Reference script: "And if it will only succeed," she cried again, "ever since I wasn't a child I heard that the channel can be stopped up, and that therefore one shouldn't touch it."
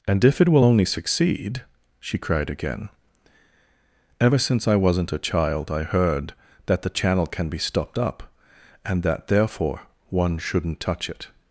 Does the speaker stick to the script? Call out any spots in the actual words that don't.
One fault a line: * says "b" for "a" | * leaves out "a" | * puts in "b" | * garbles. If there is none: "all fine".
all fine